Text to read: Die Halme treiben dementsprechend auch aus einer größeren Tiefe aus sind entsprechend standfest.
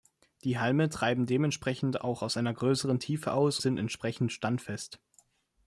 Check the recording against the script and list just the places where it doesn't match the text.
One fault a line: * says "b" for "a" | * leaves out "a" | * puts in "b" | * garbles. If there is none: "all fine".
all fine